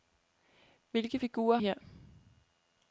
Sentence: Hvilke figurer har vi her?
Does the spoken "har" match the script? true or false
false